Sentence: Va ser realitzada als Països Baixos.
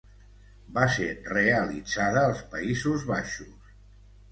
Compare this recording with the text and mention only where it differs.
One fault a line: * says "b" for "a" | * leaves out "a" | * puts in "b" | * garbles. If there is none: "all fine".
all fine